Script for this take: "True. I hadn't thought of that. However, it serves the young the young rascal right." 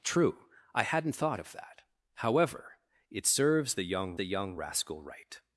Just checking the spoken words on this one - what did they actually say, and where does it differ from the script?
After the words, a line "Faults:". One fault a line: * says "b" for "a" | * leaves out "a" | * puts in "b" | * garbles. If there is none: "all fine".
"True. I hadn't thought of that. However, it serves the young the young rascal right."
Faults:
all fine